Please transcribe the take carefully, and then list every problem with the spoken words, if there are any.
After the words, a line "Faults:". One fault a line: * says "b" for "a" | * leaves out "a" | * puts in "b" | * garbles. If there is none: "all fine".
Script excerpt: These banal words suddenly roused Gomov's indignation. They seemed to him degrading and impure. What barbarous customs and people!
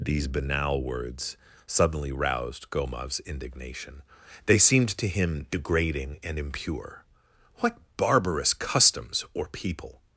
These banal words suddenly roused Gomov's indignation. They seemed to him degrading and impure. What barbarous customs or people!
Faults:
* says "or" for "and"